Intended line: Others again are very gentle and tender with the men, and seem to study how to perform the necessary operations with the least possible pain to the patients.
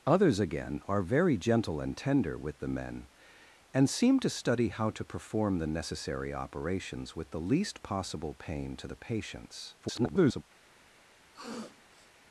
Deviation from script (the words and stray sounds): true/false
true